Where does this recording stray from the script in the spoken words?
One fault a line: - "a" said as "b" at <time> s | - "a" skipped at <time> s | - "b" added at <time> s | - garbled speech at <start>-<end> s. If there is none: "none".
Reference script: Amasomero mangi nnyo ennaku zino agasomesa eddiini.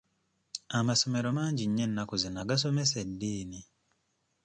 none